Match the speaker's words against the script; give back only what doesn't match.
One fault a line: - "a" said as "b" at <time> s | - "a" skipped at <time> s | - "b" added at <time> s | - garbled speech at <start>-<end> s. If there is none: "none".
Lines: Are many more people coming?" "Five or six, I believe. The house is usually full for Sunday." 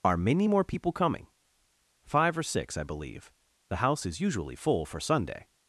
none